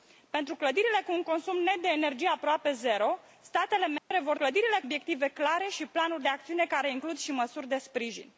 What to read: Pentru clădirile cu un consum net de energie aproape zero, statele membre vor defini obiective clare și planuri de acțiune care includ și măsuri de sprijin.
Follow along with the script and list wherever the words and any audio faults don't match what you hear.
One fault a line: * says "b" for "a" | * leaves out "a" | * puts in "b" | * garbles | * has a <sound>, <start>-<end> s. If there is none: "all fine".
* has a dropout, 4.0-4.1 s
* says "clădirile" for "defini"